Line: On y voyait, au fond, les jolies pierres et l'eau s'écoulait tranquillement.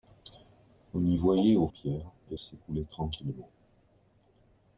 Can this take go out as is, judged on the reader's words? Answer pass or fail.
fail